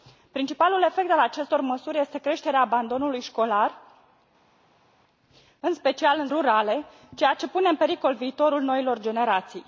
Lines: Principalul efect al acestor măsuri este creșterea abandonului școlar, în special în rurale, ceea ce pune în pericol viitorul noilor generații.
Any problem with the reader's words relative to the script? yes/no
no